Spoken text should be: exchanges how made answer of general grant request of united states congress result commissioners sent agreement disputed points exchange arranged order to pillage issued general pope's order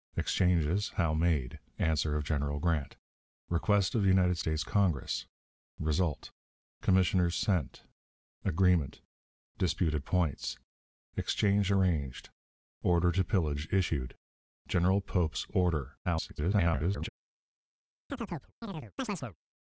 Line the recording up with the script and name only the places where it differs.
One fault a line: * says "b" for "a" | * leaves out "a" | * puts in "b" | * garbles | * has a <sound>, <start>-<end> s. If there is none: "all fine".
* garbles
* has a chirp, 18.1-19.4 s